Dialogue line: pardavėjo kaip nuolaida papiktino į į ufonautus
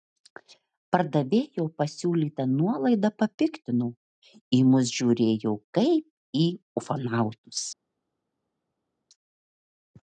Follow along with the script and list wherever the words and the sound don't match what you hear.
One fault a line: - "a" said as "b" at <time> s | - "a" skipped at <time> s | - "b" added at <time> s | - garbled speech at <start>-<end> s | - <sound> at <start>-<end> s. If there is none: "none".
- "kaip" said as "pasiūlyta" at 1.8 s
- "mus žiūrėjo kaip" added at 4.7 s